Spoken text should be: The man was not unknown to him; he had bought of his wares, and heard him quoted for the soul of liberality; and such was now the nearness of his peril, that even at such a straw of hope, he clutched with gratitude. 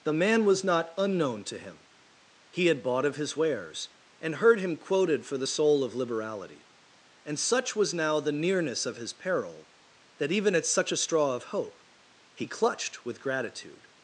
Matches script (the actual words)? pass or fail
pass